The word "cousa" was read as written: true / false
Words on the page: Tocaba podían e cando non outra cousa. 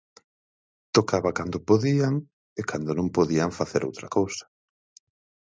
true